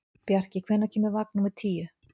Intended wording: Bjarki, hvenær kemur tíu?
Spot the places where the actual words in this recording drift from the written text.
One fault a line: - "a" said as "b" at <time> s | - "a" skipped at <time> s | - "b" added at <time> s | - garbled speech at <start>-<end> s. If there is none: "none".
- "vagn númer" added at 1.2 s